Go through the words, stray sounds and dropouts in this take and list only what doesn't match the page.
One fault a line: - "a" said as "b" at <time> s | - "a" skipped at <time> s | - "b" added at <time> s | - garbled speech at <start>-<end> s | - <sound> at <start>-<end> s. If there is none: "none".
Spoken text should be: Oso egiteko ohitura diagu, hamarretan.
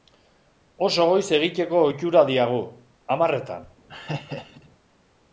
- "goiz" added at 1.1 s
- laugh at 3.9-4.7 s